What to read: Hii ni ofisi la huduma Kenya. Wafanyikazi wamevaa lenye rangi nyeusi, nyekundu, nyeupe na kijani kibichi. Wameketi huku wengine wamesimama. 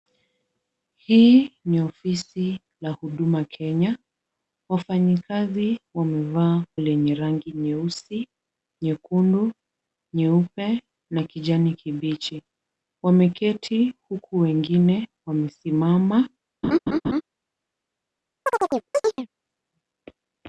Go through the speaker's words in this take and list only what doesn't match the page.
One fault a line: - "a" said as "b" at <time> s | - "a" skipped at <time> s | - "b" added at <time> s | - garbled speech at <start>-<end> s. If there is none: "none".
none